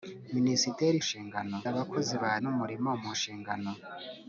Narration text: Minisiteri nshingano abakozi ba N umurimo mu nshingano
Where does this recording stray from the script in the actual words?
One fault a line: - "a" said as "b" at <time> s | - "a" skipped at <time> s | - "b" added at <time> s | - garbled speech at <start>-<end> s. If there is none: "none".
none